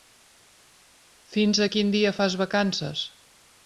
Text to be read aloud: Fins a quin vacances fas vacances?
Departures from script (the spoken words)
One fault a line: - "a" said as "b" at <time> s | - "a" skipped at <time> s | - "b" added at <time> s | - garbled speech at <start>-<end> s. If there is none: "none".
- "vacances" said as "dia" at 2.0 s